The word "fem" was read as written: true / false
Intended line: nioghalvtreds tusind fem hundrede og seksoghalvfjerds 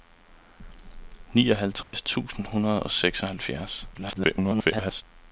false